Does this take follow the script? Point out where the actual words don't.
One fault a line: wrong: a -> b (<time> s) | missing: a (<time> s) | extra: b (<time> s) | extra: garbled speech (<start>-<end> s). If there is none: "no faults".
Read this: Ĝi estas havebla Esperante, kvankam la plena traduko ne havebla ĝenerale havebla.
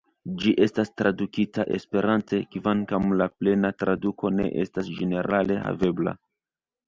wrong: havebla -> tradukita (1.0 s)
wrong: havebla -> estas (4.7 s)